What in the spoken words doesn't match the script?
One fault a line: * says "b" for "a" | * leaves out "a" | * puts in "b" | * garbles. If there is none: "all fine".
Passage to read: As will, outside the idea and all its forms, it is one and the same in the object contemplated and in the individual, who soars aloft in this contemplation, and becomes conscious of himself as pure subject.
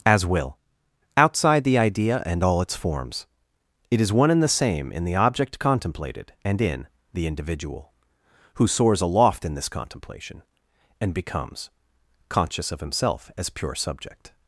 all fine